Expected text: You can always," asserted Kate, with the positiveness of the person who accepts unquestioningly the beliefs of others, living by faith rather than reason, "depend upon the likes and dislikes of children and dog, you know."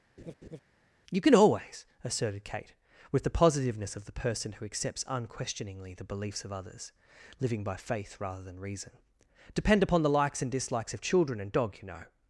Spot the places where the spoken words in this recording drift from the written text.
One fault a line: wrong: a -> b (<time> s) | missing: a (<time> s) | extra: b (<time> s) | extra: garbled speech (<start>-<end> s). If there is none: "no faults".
no faults